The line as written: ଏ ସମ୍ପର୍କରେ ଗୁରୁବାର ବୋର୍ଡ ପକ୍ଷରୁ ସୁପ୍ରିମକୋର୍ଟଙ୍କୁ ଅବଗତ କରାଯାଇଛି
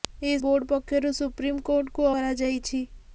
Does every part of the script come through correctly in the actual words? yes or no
no